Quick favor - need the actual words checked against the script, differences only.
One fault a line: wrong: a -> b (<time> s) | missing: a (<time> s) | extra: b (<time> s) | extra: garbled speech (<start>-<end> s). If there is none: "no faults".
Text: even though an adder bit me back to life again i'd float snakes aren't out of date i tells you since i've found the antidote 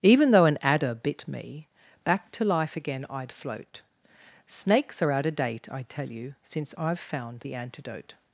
wrong: aren't -> are (5.0 s)
wrong: tells -> tell (5.8 s)